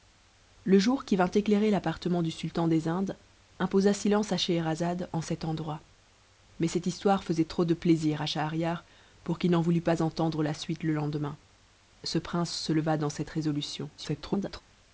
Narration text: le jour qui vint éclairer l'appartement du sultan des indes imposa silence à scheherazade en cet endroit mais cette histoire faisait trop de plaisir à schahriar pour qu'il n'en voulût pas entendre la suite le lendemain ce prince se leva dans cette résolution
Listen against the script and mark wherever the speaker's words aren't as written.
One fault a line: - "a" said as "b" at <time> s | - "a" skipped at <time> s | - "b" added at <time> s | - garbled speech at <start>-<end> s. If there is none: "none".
- garbled speech at 14.0-14.6 s